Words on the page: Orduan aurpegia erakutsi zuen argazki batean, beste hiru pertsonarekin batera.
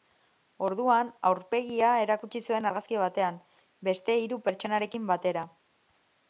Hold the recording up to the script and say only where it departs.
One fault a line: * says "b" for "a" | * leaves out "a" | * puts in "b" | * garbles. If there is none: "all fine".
all fine